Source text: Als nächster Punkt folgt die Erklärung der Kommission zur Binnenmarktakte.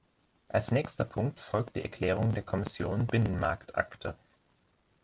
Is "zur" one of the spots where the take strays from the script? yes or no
yes